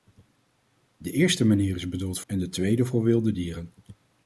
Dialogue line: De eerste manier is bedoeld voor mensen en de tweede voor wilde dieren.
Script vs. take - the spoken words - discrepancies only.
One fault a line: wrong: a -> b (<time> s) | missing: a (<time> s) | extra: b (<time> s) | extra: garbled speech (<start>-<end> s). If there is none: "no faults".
missing: voor mensen (2.2 s)